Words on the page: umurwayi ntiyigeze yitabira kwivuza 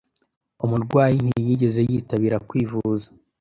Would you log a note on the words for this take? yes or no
no